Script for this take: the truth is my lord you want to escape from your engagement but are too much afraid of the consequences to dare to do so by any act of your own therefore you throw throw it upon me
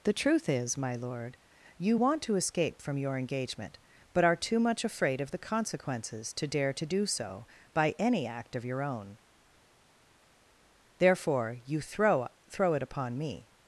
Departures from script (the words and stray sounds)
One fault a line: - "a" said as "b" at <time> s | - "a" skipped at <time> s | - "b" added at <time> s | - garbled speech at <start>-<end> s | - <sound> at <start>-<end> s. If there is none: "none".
none